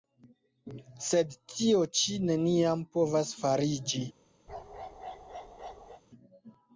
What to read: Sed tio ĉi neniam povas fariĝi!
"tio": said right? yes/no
yes